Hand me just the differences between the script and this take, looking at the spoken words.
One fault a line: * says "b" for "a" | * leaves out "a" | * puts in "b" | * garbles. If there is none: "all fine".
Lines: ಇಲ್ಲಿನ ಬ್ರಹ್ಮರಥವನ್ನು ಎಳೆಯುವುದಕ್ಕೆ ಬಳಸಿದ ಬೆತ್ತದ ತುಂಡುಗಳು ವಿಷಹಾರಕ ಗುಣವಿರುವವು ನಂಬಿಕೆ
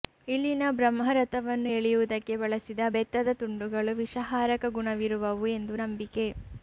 * puts in "ಎಂದು"